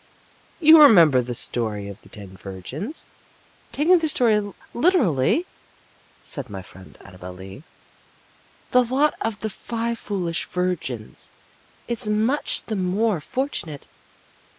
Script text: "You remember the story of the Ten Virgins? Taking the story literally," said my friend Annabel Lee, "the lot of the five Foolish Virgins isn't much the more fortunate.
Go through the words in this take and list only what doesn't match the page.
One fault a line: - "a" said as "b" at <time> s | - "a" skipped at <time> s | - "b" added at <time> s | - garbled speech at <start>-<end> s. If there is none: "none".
- "isn't" said as "is" at 11.8 s